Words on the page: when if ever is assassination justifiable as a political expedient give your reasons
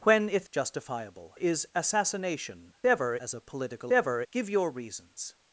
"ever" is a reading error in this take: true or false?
true